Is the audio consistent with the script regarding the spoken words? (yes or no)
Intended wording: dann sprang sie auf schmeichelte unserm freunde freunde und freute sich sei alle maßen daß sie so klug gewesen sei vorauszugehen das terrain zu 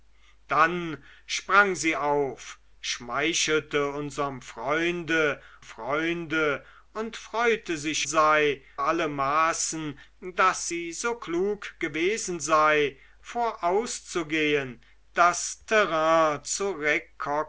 yes